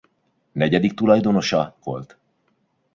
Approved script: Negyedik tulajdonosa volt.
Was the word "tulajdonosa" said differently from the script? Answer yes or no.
no